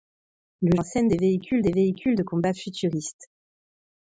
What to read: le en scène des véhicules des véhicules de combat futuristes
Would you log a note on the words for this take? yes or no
no